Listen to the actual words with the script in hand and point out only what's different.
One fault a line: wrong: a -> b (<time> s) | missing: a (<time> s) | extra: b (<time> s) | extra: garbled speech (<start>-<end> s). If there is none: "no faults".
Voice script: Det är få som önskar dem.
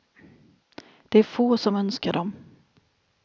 no faults